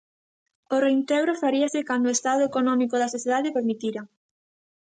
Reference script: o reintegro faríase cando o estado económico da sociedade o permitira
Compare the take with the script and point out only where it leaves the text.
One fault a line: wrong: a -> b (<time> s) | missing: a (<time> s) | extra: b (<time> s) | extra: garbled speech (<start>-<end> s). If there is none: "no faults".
no faults